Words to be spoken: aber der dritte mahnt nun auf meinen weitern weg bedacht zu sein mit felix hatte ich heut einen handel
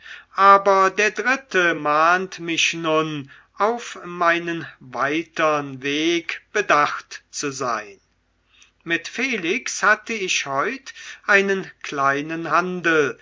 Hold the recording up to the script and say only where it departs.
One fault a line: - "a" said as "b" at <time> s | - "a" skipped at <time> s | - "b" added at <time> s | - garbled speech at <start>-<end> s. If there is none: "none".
- "mich" added at 2.4 s
- "kleinen" added at 11.8 s